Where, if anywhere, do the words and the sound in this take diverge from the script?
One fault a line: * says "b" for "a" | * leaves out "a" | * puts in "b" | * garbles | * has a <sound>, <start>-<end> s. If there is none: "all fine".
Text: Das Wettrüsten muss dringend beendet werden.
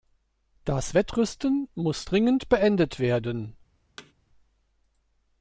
* has a thud, 4.0-4.1 s